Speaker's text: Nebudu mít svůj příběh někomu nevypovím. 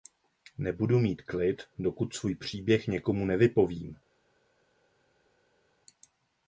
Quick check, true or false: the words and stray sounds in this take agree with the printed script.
false